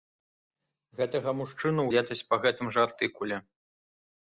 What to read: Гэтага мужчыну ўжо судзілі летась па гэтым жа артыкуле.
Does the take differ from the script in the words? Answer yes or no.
yes